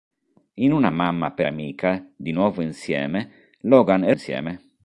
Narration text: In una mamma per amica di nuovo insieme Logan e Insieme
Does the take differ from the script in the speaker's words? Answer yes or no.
no